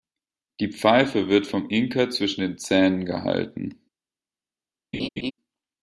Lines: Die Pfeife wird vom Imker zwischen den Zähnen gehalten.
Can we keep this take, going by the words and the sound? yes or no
no